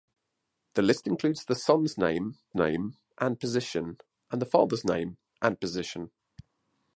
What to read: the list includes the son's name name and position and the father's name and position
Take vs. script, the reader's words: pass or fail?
pass